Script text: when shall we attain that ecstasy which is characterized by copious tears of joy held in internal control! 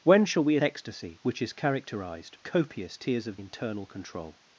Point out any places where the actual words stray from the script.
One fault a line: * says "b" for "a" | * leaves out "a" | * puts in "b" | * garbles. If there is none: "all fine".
* leaves out "attain that"
* leaves out "by"
* leaves out "joy held in"